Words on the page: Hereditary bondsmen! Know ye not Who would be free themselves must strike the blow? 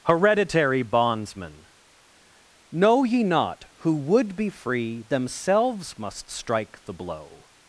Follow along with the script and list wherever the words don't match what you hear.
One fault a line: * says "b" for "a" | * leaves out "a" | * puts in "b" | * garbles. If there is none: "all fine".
all fine